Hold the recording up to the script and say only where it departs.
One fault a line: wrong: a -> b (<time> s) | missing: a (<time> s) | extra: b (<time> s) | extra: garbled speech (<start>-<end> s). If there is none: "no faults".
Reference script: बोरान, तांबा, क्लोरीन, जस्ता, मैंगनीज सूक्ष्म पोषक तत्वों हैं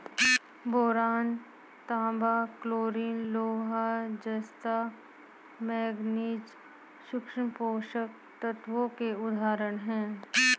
extra: लोहा (3.2 s)
extra: के उदाहरण (8.9 s)